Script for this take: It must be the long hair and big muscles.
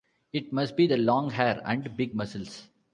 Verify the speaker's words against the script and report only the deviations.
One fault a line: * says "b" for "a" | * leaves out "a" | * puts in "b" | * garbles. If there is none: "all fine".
all fine